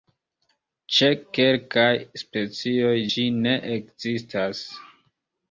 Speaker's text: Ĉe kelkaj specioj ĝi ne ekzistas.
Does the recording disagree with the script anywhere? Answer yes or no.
no